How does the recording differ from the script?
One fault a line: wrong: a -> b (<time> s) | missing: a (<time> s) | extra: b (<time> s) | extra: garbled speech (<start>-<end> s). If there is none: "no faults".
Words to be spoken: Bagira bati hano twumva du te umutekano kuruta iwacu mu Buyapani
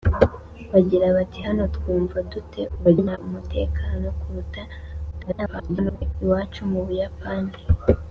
extra: garbled speech (2.7-3.2 s)
extra: garbled speech (5.1-6.1 s)